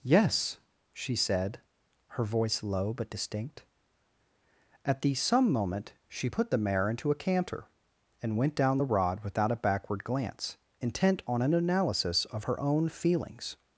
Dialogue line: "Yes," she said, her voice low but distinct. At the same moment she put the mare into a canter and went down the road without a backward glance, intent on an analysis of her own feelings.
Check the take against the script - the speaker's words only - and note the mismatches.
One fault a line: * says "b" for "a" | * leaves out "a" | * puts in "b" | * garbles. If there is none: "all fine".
* says "some" for "same"
* says "rod" for "road"